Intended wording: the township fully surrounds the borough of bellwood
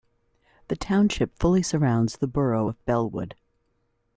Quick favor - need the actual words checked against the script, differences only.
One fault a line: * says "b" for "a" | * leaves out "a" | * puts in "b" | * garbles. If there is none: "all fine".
all fine